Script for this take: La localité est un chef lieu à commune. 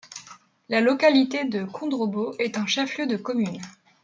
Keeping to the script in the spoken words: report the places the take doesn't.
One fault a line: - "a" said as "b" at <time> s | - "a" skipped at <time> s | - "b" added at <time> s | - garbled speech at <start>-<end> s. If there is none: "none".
- "de Kondrobo" added at 1.4 s
- "à" said as "de" at 3.0 s